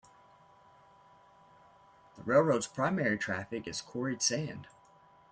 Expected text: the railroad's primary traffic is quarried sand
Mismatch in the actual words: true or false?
false